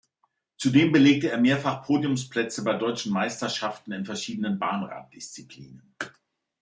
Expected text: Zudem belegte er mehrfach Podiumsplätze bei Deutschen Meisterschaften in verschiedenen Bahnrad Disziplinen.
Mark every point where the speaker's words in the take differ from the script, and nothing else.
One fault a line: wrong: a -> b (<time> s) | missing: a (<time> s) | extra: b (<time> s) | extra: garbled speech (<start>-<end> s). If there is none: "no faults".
no faults